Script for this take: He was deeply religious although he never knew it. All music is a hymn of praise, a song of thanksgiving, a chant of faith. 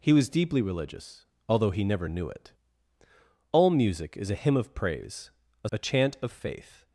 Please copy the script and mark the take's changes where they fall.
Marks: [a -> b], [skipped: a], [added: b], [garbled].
He was deeply religious although he never knew it. All music is a hymn of praise, a [skipped: song of thanksgiving,] a chant of faith.